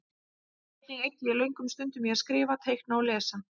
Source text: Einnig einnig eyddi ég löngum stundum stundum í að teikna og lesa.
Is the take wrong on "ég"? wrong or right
right